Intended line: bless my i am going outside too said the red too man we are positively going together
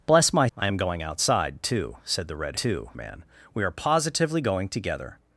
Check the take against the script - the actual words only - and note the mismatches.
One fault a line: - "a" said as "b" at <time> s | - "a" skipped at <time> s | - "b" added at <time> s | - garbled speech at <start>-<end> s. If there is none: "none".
none